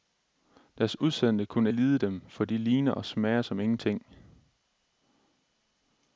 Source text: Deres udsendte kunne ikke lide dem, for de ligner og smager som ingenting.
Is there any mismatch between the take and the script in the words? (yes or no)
yes